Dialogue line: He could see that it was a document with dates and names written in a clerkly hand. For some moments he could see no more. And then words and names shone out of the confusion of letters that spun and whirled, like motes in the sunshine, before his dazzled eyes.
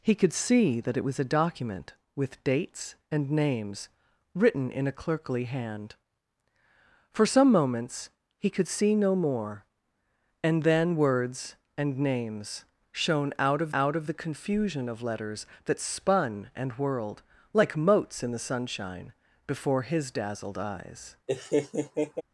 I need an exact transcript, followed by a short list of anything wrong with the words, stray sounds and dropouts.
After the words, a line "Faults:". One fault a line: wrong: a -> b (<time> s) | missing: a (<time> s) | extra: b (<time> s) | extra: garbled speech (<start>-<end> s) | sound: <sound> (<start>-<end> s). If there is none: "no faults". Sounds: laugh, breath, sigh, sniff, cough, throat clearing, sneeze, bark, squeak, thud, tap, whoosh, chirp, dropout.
He could see that it was a document with dates and names written in a clerkly hand. For some moments he could see no more. And then words and names shone out of out of the confusion of letters that spun and whirled, like motes in the sunshine, before his dazzled eyes.
Faults:
extra: out of (13.7 s)
sound: laugh (21.3-22.2 s)